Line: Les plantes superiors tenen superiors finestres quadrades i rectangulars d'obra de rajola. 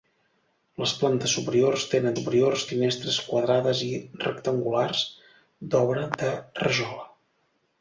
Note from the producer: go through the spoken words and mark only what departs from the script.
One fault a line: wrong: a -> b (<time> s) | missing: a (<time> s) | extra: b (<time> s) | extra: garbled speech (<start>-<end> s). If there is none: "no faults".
no faults